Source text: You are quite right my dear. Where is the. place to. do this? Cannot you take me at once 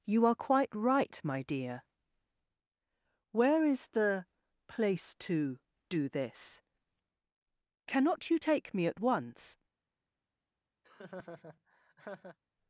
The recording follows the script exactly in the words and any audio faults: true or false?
false